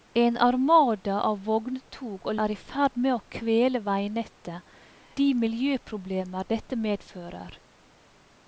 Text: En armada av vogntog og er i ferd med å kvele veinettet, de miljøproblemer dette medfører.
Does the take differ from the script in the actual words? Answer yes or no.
no